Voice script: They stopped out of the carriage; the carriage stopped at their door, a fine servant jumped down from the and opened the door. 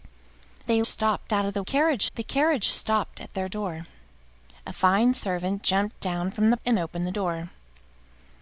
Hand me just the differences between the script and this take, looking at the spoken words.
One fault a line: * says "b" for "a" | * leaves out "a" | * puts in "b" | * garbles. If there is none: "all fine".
all fine